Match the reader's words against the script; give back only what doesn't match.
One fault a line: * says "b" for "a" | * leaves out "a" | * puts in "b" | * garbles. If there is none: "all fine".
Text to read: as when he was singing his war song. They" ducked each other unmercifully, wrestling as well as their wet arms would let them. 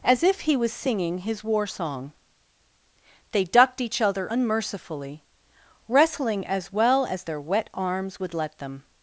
* says "if" for "when"